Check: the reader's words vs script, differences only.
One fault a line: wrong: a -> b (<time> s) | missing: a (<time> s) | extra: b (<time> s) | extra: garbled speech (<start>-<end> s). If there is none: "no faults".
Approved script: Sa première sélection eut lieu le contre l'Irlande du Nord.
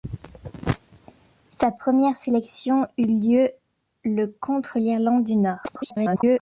extra: garbled speech (5.6-6.4 s)